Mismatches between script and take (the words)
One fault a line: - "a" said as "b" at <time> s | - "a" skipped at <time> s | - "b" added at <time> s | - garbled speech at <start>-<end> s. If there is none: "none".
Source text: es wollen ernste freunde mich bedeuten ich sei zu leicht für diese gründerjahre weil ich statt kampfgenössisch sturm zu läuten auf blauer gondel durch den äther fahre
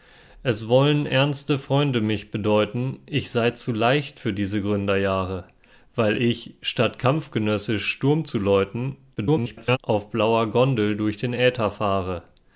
- garbled speech at 9.2-9.8 s